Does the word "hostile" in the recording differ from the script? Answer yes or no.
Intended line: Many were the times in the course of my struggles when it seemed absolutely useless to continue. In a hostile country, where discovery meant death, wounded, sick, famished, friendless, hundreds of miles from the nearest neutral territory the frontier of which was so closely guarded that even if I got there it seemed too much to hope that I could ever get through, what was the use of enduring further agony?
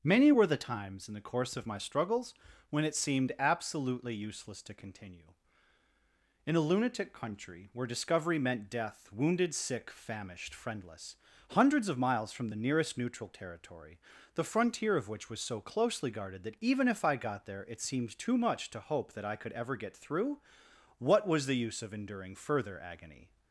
yes